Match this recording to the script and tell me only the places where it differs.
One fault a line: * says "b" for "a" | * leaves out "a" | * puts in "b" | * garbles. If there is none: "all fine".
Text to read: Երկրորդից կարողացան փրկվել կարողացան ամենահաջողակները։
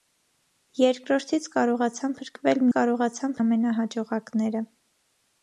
all fine